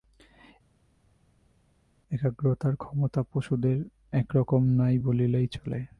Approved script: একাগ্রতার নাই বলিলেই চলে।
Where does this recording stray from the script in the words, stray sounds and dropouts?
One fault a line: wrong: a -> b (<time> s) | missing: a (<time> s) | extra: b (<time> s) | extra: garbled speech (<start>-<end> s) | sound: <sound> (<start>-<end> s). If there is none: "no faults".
extra: ক্ষমতা পশুদের একরকম (2.8 s)